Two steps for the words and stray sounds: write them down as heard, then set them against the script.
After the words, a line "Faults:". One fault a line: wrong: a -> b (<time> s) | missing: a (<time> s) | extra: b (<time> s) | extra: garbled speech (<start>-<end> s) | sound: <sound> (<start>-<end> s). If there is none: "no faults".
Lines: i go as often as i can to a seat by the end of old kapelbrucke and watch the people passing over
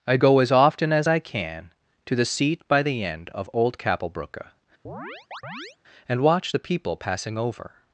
i go as often as i can to the seat by the end of old kapelbrucke and watch the people passing over
Faults:
wrong: a -> the (2.1 s)
sound: chirp (4.8-5.8 s)